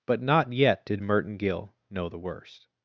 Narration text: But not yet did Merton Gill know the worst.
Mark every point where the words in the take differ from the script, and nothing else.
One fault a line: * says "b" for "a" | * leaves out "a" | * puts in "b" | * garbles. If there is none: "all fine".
all fine